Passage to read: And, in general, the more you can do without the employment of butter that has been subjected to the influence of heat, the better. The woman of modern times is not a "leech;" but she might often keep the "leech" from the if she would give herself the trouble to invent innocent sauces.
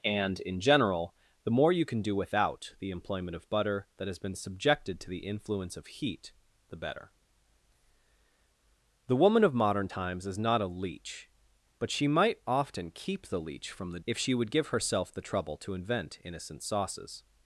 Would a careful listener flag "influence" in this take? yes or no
no